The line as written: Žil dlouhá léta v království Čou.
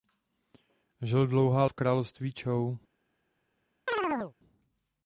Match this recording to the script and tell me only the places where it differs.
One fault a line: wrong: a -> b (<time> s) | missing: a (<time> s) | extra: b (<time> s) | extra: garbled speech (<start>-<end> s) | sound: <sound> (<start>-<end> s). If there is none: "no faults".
missing: léta (1.6 s)
sound: chirp (3.9-4.3 s)